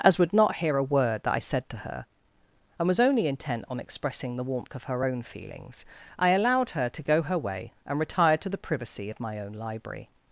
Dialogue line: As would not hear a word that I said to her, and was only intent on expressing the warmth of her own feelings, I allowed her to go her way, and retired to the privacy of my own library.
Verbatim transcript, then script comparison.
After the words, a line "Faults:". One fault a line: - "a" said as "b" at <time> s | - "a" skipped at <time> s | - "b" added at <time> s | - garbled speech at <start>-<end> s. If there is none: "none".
As would not hear a word that I said to her, and was only intent on expressing the warmth of her own feelings, I allowed her to go her way, and retired to the privacy of my own library.
Faults:
none